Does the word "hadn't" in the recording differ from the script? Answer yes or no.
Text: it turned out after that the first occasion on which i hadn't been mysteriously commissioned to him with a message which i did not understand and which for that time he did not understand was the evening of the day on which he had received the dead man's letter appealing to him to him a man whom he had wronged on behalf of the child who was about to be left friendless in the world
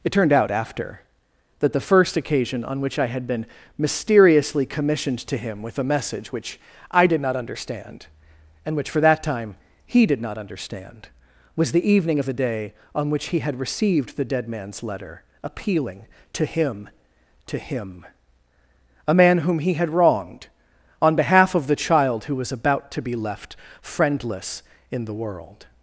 yes